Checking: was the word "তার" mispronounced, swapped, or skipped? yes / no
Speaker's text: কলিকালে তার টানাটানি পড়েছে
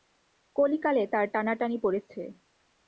no